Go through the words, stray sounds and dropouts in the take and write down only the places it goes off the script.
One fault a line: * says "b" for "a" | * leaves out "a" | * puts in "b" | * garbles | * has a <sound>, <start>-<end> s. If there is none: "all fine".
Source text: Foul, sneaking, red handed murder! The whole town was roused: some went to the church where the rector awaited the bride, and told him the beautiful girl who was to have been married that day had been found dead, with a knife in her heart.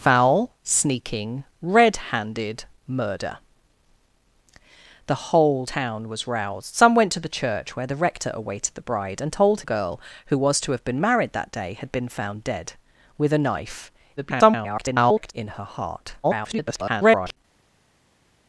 * leaves out "him the beautiful"
* garbles
* garbles